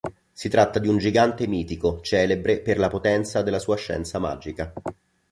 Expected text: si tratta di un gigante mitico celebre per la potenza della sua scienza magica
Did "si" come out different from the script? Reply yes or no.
no